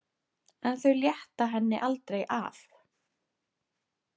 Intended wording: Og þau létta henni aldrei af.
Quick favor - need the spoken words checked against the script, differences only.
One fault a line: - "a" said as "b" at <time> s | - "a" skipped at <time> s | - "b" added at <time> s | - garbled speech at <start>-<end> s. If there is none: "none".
- "Og" said as "En" at 0.7 s